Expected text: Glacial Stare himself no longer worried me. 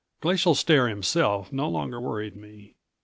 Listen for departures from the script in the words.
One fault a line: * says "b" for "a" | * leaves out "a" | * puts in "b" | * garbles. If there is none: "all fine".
all fine